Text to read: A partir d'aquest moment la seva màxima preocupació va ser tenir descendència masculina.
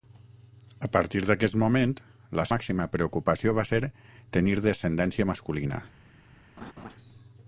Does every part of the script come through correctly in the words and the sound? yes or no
no